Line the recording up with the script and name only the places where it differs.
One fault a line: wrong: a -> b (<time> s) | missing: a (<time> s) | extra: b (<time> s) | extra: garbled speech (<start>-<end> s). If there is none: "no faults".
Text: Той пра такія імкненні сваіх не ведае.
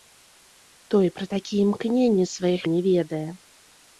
no faults